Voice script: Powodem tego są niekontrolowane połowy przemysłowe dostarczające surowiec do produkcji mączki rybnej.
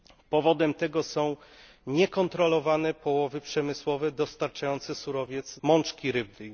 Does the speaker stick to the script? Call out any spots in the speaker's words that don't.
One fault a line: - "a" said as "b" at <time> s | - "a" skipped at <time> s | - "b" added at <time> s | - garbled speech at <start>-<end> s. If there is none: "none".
- "do produkcji" skipped at 5.6 s